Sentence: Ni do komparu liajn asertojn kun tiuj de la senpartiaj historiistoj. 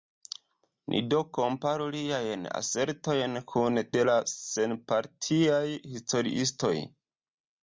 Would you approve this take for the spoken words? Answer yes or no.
no